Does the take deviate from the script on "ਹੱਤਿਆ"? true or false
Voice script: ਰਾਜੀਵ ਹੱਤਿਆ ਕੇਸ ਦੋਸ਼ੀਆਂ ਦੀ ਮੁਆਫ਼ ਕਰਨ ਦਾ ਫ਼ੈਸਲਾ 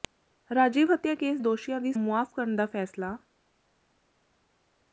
false